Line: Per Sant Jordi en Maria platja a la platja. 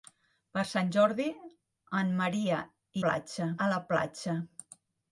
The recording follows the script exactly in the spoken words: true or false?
true